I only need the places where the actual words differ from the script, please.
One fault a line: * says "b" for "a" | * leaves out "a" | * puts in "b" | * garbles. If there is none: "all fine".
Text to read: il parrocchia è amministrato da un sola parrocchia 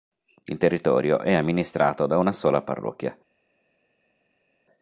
* says "territorio" for "parrocchia"
* says "una" for "un"